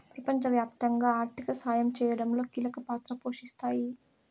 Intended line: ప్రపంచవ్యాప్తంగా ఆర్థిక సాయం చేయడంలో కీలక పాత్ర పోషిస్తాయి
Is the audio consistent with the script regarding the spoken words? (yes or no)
yes